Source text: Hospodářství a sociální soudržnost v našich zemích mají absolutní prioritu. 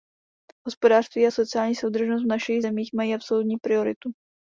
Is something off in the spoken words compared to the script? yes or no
no